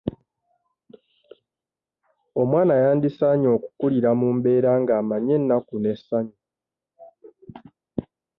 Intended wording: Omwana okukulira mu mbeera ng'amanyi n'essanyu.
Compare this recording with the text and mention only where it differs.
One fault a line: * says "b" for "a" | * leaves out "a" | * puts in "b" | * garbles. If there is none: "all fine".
* puts in "yandisaanye"
* puts in "ennaku"